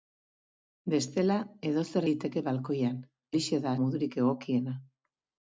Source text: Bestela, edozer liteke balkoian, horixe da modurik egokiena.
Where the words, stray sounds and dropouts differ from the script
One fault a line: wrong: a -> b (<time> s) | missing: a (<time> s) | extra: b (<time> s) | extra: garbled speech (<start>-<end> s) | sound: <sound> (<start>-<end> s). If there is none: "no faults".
no faults